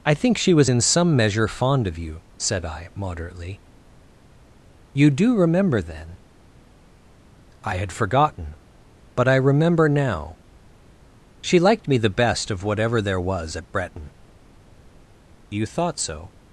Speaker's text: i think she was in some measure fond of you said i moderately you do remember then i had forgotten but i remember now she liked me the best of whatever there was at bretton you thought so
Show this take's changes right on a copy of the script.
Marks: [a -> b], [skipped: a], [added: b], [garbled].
i think she was in some measure fond of you said i moderately you do remember then i had forgotten but i remember now she liked me the best of whatever there was at bretton you thought so